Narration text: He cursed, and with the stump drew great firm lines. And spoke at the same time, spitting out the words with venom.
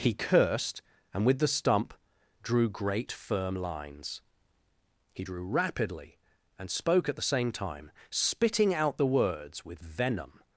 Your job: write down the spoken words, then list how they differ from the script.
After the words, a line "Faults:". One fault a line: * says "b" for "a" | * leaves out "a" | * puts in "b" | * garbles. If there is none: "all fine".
He cursed, and with the stump drew great firm lines. He drew rapidly and spoke at the same time, spitting out the words with venom.
Faults:
* puts in "He drew rapidly"